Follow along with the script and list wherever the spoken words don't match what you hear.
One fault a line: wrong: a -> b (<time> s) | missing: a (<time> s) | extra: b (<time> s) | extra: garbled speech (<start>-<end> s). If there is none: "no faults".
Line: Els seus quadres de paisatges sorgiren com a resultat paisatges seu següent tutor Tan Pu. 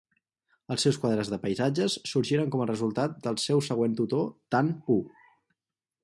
wrong: paisatges -> del (3.3 s)